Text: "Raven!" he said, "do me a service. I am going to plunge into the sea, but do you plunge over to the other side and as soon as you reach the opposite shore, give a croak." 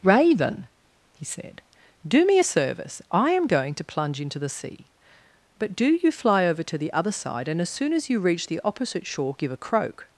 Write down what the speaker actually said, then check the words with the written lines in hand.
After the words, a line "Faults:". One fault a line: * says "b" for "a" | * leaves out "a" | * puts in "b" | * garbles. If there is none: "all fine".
"Raven!" he said, "do me a service. I am going to plunge into the sea, but do you fly over to the other side and as soon as you reach the opposite shore, give a croak."
Faults:
* says "fly" for "plunge"